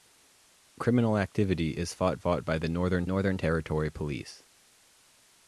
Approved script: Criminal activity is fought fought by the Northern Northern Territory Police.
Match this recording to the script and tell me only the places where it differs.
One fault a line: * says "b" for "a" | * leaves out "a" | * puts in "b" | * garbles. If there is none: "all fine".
all fine